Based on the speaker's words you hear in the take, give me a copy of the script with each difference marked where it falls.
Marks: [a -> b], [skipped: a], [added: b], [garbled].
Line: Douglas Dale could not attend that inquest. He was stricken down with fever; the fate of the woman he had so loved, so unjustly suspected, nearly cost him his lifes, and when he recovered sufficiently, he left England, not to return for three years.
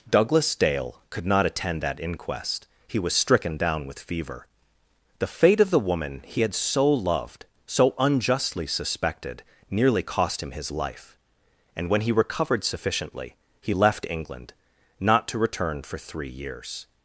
Douglas Dale could not attend that inquest. He was stricken down with fever; the fate of the woman he had so loved, so unjustly suspected, nearly cost him his [lifes, -> life] and when he recovered sufficiently, he left England, not to return for three years.